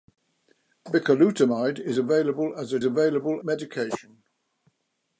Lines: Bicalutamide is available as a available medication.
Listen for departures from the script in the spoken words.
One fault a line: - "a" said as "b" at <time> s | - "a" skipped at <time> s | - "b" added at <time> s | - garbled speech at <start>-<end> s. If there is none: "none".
none